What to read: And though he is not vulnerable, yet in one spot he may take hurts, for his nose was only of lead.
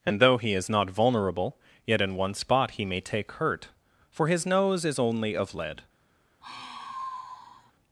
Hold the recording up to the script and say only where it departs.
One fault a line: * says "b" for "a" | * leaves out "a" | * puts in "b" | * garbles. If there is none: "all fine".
* says "hurt" for "hurts"
* says "is" for "was"